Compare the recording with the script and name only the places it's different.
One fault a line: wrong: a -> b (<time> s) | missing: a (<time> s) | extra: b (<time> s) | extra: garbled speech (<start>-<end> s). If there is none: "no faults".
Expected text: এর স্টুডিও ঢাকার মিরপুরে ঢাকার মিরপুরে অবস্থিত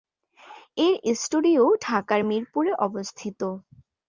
missing: ঢাকার মিরপুরে (2.7 s)